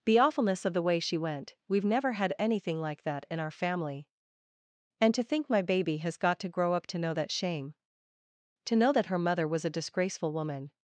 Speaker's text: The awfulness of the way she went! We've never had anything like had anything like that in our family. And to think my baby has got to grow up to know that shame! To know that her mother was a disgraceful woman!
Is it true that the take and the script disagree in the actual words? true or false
true